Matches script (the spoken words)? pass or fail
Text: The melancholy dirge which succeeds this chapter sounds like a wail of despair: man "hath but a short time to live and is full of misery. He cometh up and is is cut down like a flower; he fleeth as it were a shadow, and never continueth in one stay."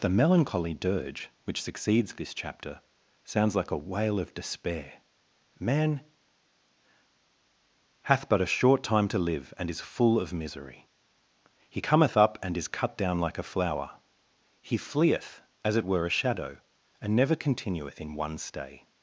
fail